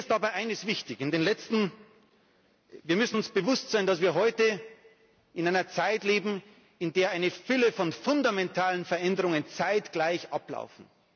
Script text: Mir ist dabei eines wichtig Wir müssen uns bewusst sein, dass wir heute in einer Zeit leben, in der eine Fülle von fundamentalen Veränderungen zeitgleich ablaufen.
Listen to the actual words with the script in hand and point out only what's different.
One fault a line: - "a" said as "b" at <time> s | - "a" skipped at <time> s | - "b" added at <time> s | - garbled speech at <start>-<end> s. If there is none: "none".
none